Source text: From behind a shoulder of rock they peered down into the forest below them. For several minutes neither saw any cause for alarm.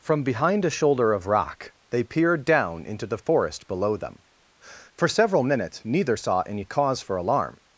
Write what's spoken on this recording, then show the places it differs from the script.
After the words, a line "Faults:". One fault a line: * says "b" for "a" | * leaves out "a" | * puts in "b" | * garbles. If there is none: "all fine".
From behind a shoulder of rock they peered down into the forest below them. For several minutes neither saw any cause for alarm.
Faults:
all fine